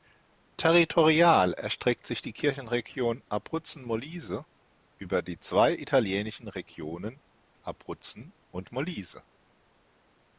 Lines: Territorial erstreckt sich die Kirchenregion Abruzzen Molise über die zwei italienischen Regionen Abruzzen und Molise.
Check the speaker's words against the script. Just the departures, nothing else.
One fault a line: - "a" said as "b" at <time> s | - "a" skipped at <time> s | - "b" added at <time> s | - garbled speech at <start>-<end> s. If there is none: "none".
none